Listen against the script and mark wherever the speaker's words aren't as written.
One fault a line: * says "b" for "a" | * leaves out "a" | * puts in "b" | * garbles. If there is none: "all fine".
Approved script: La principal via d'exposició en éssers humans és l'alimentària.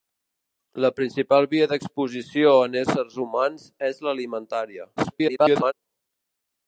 * garbles